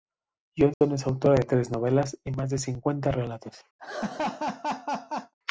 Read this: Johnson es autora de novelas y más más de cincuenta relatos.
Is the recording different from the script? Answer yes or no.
yes